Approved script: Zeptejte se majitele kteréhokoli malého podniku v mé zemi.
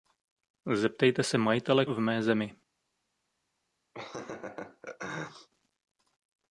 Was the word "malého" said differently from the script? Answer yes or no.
yes